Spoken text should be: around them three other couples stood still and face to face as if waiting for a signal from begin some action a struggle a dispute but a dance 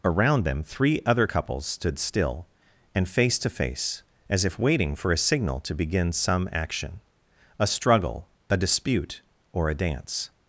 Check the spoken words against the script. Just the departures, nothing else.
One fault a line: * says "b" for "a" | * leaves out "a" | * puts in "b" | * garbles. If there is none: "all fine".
* says "to" for "from"
* says "or" for "but"